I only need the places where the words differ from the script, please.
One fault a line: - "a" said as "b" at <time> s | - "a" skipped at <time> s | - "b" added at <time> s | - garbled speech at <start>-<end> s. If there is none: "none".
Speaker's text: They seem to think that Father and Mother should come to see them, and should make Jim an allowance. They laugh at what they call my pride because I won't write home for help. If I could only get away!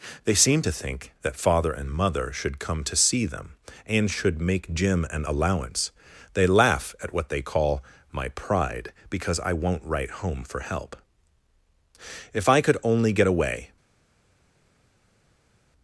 none